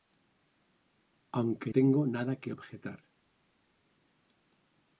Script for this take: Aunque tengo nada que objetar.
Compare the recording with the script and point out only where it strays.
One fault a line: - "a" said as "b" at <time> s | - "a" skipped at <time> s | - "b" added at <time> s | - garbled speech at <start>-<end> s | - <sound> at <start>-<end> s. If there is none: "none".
none